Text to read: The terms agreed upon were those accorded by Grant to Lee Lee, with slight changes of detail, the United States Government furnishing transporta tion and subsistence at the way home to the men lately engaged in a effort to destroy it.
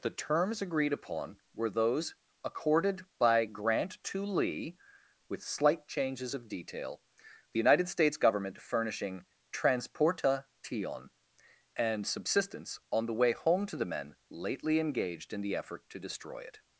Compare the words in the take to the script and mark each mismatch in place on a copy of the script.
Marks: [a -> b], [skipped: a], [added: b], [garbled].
The terms agreed upon were those accorded by Grant to Lee [skipped: Lee,] with slight changes of detail, the United States Government furnishing transporta tion and subsistence [at -> on] the way home to the men lately engaged in [a -> the] effort to destroy it.